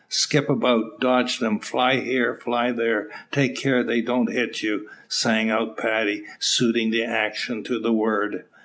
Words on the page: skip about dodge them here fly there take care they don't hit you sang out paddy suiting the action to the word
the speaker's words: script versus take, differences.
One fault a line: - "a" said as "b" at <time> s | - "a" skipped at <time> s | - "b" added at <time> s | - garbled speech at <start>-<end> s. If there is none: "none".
- "fly" added at 1.6 s